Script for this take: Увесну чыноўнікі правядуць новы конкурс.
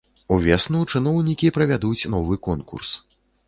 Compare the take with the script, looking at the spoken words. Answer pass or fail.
pass